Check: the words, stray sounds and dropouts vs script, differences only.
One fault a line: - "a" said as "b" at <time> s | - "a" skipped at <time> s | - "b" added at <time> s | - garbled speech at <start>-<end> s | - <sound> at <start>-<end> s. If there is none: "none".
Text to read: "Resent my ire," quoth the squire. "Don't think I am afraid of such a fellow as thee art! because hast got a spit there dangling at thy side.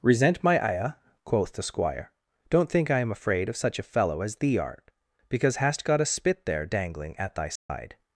- dropout at 7.6-7.7 s